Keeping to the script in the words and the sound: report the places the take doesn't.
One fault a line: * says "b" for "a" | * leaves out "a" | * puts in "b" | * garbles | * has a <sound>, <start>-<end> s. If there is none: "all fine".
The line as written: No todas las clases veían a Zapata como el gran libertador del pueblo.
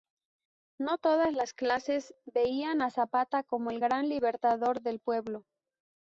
all fine